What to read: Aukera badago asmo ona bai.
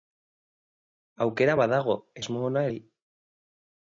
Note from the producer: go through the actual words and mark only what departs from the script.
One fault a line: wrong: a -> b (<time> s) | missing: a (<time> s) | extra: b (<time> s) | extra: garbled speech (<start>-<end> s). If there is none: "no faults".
no faults